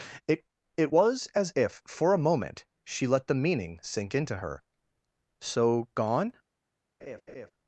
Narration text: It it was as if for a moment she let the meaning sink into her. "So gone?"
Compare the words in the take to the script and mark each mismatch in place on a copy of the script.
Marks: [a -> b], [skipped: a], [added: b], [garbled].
It it was as if for a moment she let the meaning sink into her. "So gone?"